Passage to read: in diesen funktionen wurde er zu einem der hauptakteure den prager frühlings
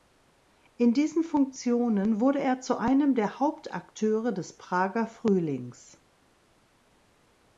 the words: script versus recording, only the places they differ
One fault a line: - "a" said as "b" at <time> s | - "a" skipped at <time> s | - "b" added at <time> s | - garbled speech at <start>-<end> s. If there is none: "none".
- "den" said as "des" at 4.3 s